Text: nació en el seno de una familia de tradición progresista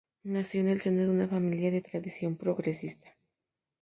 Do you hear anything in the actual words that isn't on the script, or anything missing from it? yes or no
no